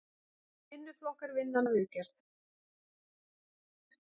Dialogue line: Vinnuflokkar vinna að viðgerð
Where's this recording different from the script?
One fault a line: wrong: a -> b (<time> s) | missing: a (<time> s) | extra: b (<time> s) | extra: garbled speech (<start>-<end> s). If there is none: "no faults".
no faults